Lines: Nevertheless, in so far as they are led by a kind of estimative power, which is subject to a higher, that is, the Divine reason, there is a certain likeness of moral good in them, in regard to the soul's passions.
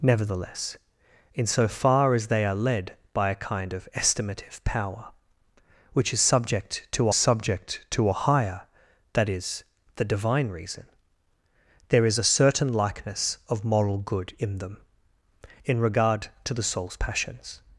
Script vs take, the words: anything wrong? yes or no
yes